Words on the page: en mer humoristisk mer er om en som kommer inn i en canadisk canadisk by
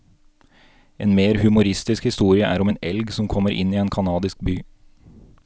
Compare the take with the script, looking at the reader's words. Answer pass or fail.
fail